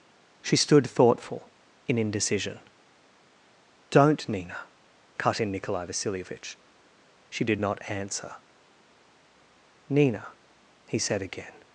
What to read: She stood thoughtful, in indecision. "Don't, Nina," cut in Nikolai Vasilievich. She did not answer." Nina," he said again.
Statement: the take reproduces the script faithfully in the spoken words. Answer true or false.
true